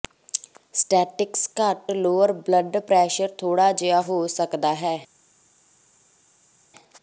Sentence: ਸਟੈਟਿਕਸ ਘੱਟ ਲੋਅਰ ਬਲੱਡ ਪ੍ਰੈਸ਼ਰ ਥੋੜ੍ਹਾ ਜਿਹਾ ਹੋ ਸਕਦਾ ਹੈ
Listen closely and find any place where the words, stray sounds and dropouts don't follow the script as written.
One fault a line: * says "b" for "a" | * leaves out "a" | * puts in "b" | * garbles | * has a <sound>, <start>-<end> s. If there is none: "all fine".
all fine